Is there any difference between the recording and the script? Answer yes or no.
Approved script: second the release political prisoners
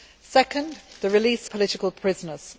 no